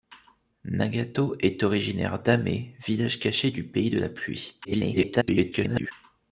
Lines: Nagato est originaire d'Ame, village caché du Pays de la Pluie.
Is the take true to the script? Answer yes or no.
no